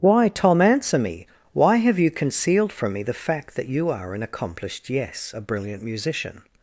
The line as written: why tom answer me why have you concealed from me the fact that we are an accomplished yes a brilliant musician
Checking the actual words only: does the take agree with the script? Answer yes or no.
no